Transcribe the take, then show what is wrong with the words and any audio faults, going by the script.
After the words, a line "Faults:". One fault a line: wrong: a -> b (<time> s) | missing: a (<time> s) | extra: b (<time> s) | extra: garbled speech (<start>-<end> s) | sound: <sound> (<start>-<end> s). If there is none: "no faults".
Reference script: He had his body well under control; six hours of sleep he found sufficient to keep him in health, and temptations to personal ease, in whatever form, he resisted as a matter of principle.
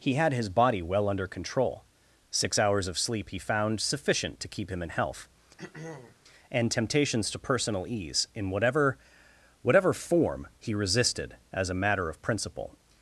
He had his body well under control; six hours of sleep he found sufficient to keep him in health, and temptations to personal ease, in whatever whatever form, he resisted as a matter of principle.
Faults:
sound: throat clearing (5.6-6.2 s)
extra: whatever (9.6 s)